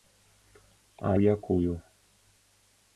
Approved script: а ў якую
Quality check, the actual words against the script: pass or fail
pass